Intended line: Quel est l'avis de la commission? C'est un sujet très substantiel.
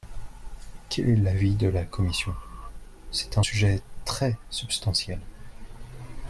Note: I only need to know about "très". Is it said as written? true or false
true